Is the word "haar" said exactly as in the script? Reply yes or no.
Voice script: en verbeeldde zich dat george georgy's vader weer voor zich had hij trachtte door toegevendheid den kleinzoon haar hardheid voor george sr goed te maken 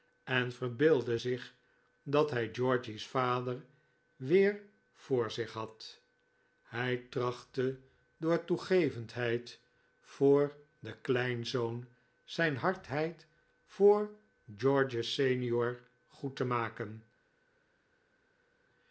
no